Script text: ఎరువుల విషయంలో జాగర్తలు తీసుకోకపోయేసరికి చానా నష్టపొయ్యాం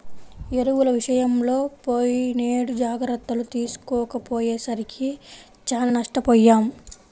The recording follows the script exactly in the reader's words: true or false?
false